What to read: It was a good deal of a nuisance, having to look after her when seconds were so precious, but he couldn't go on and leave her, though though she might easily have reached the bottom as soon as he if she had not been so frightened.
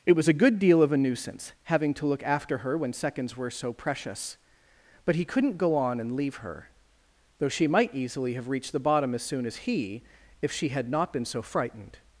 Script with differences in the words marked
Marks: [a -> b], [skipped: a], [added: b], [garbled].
It was a good deal of a nuisance, having to look after her when seconds were so precious, but he couldn't go on and leave her, though [skipped: though] she might easily have reached the bottom as soon as he if she had not been so frightened.